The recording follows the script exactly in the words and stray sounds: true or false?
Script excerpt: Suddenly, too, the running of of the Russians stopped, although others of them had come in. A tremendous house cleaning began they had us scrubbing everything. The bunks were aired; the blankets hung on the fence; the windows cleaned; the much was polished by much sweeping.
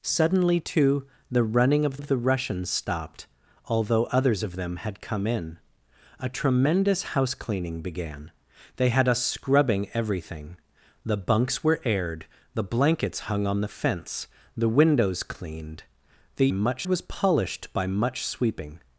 true